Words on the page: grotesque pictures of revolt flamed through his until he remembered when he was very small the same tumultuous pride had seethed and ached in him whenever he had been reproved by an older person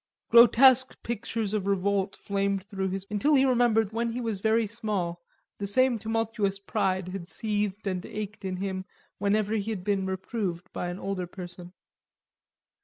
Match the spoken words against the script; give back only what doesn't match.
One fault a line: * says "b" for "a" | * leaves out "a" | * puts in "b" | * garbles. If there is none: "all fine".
all fine